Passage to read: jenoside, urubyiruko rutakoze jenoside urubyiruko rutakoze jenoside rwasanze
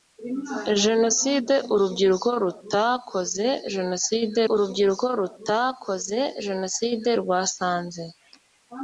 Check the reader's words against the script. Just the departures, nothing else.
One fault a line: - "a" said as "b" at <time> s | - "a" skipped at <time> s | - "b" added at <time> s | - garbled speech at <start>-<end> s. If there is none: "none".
none